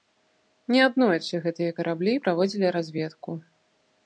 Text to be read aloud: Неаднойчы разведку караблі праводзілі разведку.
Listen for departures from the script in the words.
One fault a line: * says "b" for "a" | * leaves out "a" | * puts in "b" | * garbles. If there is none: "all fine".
* says "гэтыя" for "разведку"